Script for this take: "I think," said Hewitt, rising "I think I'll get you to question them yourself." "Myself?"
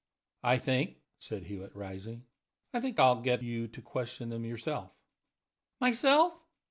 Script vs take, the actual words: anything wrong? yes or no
no